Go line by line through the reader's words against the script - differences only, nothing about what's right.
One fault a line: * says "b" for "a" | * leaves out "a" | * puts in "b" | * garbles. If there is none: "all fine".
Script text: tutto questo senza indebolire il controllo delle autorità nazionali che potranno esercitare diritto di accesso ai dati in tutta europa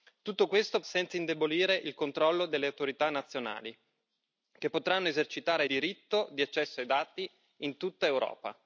all fine